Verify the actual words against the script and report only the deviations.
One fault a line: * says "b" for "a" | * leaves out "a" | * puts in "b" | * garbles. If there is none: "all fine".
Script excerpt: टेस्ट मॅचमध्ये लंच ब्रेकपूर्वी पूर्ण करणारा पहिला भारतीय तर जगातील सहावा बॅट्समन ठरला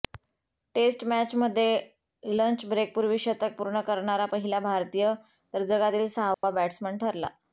* puts in "शतक"